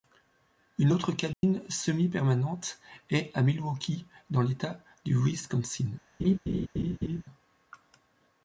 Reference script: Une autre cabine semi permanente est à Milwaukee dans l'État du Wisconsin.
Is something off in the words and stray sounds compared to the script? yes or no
yes